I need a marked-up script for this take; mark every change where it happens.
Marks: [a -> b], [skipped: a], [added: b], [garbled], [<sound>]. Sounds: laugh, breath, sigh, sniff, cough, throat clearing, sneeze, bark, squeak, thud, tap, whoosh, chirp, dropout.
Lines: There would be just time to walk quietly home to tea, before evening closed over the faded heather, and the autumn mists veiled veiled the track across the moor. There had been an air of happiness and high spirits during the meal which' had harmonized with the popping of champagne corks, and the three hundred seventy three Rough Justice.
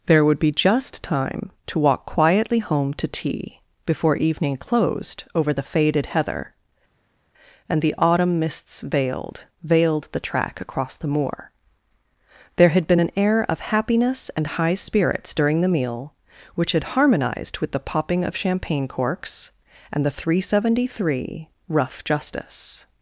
There would be just time to walk quietly home to tea, before evening closed over the faded heather, and the autumn mists veiled veiled the track across the moor. There had been an air of happiness and high spirits during the meal which' had harmonized with the popping of champagne corks, and the three hundred seventy three Rough Justice.